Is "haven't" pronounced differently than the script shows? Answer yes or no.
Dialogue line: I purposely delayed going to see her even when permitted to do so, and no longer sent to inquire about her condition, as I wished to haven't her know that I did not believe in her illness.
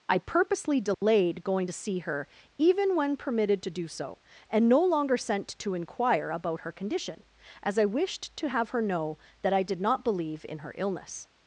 yes